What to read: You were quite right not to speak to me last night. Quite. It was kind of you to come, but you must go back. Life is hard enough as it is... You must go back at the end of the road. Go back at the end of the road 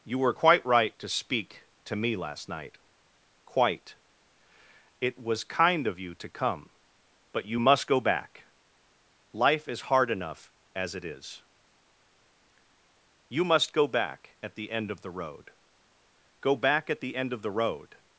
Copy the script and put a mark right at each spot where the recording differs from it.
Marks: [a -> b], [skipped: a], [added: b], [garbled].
You were quite right [skipped: not] to speak to me last night. Quite. It was kind of you to come, but you must go back. Life is hard enough as it is... You must go back at the end of the road. Go back at the end of the road